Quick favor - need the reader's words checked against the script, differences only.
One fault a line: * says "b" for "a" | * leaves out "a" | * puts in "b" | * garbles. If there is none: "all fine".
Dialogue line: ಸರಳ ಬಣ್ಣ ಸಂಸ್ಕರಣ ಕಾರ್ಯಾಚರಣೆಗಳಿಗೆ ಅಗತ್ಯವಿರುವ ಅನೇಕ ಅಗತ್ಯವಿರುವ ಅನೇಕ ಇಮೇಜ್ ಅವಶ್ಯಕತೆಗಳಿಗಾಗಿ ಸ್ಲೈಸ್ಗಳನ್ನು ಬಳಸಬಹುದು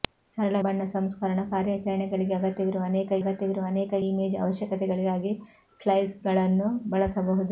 all fine